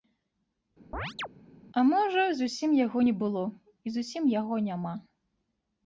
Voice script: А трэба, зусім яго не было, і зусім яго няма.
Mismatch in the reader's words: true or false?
true